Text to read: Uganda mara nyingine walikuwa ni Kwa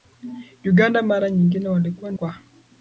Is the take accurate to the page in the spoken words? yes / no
yes